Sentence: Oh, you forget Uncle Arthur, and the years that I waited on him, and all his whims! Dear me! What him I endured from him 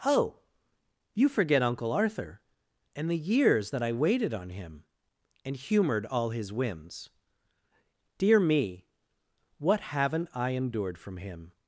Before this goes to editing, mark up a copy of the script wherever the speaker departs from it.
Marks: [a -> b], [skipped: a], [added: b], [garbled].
Oh, you forget Uncle Arthur, and the years that I waited on him, and [added: humored] all his whims! Dear me! What [him -> haven't] I endured from him